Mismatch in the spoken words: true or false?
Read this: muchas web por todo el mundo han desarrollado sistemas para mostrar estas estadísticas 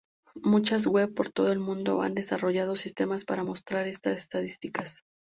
false